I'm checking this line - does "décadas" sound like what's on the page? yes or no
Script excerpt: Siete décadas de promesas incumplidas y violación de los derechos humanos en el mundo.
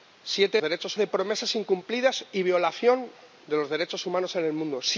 no